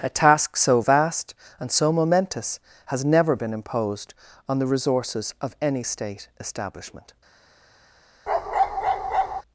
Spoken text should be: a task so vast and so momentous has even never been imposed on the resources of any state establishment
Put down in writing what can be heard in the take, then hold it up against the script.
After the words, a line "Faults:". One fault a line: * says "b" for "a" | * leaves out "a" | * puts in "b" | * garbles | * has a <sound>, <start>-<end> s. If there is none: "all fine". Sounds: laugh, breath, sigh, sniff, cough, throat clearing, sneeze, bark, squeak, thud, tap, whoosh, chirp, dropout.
a task so vast and so momentous has never been imposed on the resources of any state establishment
Faults:
* leaves out "even"
* has a bark, 8.3-9.4 s